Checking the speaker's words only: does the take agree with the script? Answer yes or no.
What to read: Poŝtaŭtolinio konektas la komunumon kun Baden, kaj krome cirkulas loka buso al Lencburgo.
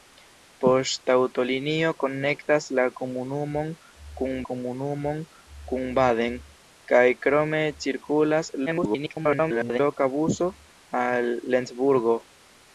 no